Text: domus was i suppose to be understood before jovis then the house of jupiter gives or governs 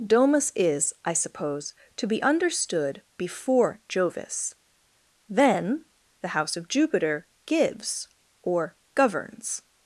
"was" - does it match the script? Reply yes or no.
no